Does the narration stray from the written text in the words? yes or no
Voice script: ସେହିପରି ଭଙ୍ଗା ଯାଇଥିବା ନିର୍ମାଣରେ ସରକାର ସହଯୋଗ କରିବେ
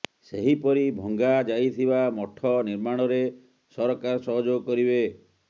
yes